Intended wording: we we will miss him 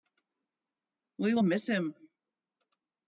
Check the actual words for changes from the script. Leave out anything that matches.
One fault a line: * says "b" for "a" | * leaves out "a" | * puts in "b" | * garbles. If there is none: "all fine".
* leaves out "we"